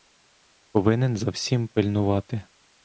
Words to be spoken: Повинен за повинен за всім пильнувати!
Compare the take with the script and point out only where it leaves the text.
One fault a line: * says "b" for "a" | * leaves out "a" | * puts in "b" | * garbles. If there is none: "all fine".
* leaves out "повинен за"